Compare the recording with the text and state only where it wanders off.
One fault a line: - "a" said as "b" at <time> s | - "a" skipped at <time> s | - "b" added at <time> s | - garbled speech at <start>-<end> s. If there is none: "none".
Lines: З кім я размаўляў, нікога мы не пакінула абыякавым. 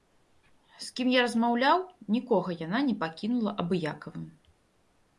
- "мы" said as "яна" at 2.7 s